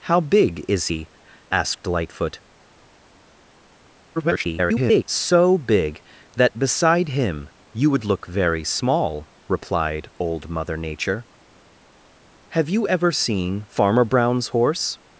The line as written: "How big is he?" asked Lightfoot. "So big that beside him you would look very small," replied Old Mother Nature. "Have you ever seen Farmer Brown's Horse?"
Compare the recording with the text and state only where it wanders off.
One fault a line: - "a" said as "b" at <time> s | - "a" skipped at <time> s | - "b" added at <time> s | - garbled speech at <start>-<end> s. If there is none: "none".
- garbled speech at 4.2-5.0 s